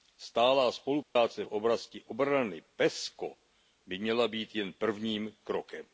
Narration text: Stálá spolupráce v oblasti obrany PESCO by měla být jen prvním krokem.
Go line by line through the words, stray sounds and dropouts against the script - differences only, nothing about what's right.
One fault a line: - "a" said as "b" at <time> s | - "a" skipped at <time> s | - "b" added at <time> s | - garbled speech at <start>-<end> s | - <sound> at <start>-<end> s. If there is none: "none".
- dropout at 1.0-1.2 s